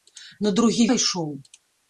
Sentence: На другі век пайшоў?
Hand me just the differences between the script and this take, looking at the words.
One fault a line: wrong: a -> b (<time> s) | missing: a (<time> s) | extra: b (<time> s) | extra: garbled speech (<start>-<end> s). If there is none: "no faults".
missing: век (0.9 s)